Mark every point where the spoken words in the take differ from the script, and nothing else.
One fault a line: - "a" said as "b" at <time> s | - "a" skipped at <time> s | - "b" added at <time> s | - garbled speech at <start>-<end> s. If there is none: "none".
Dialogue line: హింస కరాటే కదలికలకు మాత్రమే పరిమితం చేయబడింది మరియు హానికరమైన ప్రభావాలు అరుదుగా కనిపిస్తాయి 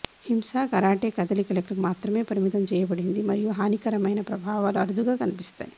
none